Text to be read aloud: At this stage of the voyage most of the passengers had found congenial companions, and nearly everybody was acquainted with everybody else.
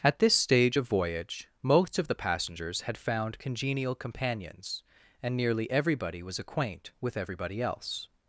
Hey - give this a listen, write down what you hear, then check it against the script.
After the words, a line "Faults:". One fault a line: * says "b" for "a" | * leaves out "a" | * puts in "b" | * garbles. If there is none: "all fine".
At this stage of voyage most of the passengers had found congenial companions, and nearly everybody was acquaint with everybody else.
Faults:
* leaves out "the"
* says "acquaint" for "acquainted"